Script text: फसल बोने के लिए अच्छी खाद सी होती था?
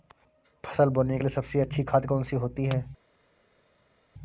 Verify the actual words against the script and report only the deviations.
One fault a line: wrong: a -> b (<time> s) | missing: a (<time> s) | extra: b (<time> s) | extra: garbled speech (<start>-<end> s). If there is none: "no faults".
extra: सबसे (1.3 s)
extra: कौन (2.1 s)
wrong: था -> है (2.7 s)